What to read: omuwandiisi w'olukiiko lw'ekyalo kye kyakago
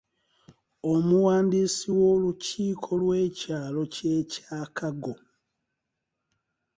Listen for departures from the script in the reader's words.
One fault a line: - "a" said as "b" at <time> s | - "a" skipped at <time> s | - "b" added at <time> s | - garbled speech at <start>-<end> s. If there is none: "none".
none